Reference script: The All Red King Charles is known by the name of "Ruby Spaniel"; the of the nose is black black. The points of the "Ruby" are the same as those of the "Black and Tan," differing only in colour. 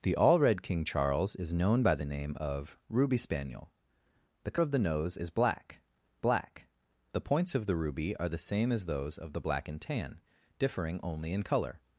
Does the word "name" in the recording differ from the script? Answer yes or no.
no